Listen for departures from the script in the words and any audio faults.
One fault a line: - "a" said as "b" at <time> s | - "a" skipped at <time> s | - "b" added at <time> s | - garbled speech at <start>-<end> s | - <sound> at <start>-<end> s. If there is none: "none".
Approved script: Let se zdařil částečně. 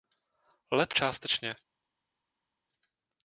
- "se zdařil" skipped at 0.9 s